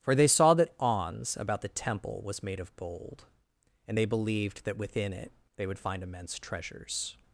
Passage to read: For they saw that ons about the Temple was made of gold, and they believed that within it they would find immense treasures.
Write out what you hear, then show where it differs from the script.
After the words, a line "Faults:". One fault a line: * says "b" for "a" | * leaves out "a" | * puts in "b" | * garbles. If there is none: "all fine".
For they saw that ons about the Temple was made of gold, and they believed that within it they would find immense treasures.
Faults:
all fine